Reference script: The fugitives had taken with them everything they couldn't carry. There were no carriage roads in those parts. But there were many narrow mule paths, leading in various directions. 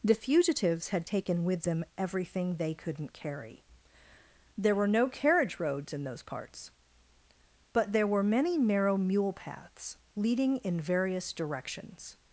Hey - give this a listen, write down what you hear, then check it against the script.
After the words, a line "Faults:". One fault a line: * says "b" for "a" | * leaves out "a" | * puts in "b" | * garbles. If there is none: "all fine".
The fugitives had taken with them everything they couldn't carry. There were no carriage roads in those parts. But there were many narrow mule paths, leading in various directions.
Faults:
all fine